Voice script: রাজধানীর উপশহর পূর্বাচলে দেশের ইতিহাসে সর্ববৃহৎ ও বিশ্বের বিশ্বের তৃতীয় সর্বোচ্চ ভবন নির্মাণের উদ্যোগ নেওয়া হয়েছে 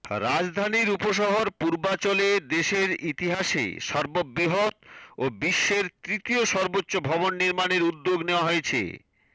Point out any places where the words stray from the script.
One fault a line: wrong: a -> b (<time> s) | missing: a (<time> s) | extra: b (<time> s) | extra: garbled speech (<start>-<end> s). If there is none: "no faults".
missing: বিশ্বের (5.8 s)